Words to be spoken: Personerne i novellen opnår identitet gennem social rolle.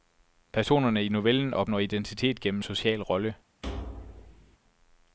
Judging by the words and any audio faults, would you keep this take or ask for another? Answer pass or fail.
fail